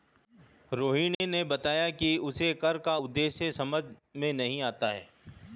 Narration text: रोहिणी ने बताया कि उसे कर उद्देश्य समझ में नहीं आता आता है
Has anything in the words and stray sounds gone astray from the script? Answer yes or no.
yes